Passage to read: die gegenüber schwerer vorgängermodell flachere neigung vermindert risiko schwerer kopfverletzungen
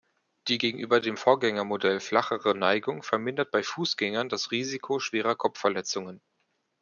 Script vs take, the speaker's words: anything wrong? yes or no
yes